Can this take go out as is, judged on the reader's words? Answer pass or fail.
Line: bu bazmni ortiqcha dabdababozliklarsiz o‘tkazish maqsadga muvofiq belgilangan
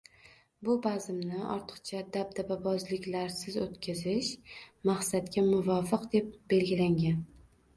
fail